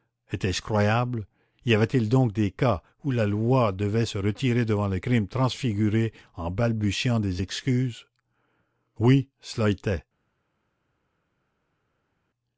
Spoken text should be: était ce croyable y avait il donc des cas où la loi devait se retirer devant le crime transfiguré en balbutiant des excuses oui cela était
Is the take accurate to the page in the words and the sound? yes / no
yes